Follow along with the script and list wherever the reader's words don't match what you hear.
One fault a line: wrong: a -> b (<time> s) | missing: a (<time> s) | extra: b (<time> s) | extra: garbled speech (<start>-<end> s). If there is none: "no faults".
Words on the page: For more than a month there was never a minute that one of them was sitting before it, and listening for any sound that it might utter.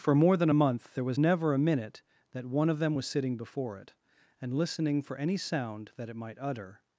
no faults